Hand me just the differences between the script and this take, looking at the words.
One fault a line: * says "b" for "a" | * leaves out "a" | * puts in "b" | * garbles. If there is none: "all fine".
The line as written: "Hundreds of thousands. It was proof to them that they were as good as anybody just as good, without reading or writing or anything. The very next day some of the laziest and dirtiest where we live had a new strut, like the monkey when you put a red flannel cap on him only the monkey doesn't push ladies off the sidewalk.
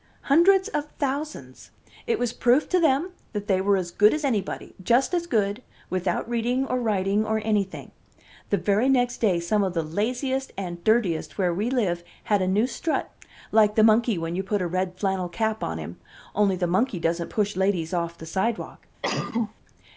all fine